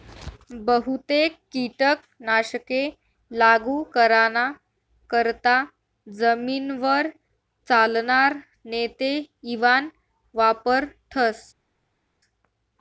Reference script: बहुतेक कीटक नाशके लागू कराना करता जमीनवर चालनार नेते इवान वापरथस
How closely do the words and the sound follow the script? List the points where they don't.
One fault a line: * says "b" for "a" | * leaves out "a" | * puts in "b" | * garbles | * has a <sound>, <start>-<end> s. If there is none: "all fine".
all fine